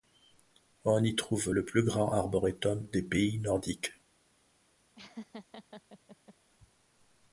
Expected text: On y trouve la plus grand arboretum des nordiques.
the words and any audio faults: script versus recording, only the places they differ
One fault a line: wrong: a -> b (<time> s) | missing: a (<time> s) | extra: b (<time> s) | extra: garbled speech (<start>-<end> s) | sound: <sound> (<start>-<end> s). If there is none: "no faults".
wrong: la -> le (1.5 s)
extra: pays (3.0 s)
sound: laugh (4.9-6.3 s)